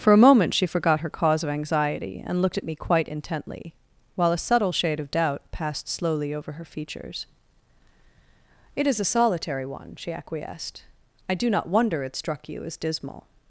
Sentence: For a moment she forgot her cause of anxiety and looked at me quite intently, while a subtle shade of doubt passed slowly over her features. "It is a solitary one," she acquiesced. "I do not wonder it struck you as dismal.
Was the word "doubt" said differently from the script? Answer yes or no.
no